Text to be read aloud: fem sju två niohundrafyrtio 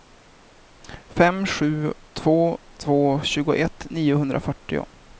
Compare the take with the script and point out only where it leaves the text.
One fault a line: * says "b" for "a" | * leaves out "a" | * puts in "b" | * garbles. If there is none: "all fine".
* puts in "två tjugoett"